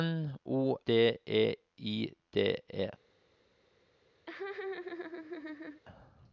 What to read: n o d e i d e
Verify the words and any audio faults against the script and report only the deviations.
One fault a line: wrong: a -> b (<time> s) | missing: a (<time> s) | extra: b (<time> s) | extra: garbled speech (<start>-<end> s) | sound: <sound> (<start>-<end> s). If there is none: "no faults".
sound: laugh (4.3-5.8 s)